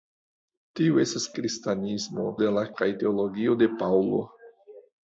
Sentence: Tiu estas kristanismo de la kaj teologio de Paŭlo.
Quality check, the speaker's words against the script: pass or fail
pass